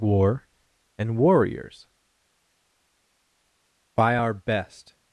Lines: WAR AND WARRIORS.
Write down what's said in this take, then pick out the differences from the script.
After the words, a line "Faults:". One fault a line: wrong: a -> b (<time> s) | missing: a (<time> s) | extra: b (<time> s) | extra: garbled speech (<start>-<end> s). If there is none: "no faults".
WAR AND WARRIORS. By our best
Faults:
extra: By our best (3.9 s)